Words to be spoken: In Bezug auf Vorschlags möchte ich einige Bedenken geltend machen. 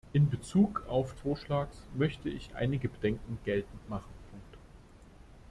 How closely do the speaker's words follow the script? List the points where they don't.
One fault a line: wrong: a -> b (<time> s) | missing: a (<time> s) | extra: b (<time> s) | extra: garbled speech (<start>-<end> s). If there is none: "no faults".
no faults